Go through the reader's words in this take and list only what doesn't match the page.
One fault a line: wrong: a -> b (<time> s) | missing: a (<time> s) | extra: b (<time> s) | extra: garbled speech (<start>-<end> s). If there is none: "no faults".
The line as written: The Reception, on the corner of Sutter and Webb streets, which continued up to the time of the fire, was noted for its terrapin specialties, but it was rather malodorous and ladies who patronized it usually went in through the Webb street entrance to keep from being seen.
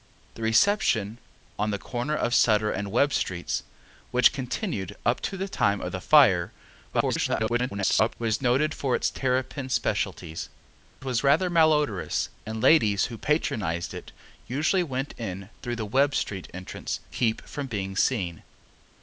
extra: garbled speech (6.9-8.2 s)
missing: but it (10.5 s)
missing: to (17.0 s)